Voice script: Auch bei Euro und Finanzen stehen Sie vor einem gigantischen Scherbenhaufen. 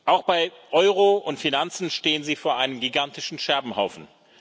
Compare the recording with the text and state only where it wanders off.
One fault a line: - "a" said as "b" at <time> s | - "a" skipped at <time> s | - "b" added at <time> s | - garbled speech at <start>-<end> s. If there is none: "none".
none